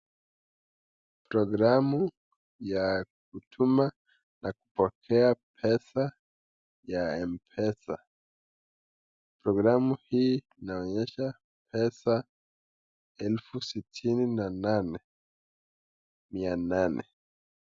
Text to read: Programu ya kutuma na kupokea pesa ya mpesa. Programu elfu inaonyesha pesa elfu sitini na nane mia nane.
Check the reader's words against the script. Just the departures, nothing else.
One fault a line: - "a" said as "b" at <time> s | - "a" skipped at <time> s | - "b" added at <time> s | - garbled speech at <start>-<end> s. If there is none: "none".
- "elfu" said as "hii" at 10.1 s